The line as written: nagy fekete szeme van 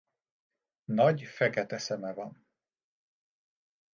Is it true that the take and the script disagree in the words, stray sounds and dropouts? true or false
false